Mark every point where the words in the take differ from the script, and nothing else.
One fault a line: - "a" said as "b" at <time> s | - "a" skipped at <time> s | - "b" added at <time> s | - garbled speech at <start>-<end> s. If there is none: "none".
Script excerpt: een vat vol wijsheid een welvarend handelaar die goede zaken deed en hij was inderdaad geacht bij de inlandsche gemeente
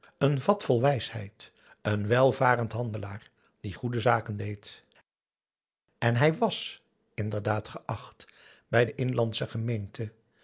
none